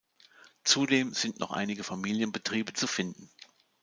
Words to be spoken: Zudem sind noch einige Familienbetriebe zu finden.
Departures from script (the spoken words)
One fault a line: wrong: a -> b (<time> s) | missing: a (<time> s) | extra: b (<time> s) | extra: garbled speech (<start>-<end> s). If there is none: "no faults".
no faults